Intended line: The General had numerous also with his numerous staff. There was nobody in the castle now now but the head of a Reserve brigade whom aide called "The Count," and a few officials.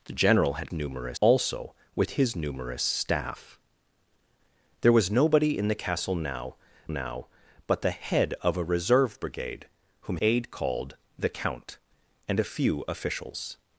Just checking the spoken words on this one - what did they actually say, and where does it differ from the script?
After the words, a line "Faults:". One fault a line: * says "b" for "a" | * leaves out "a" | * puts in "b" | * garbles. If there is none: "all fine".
The General had numerous also with his numerous staff. There was nobody in the castle now now but the head of a Reserve brigade whom aide called "The Count," and a few officials.
Faults:
all fine